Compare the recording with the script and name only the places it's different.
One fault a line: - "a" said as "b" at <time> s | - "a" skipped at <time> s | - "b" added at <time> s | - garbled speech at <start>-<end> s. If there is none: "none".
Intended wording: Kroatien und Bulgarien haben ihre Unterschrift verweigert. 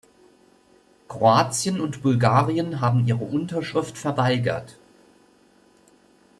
none